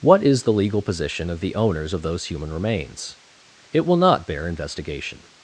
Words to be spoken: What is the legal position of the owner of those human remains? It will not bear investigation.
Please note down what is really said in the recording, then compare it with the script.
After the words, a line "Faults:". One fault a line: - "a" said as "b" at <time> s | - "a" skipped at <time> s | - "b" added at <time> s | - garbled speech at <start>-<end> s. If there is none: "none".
What is the legal position of the owners of those human remains? It will not bear investigation.
Faults:
- "owner" said as "owners" at 1.5 s